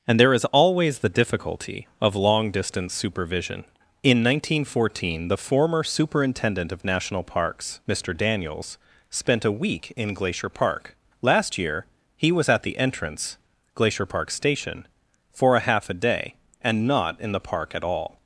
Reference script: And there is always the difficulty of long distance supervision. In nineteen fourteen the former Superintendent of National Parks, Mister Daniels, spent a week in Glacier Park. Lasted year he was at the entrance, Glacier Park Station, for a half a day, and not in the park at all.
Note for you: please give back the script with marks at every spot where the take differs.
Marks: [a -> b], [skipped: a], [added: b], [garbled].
And there is always the difficulty of long distance supervision. In nineteen fourteen the former Superintendent of National Parks, Mister Daniels, spent a week in Glacier Park. [Lasted -> Last] year he was at the entrance, Glacier Park Station, for a half a day, and not in the park at all.